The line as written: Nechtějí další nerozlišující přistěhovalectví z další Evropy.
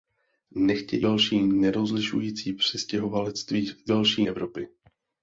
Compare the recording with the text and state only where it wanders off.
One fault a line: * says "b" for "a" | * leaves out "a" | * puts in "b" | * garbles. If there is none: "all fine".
all fine